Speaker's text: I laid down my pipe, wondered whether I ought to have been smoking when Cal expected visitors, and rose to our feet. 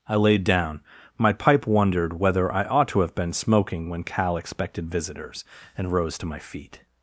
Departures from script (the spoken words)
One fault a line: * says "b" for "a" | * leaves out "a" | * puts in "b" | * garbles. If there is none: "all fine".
* says "my" for "our"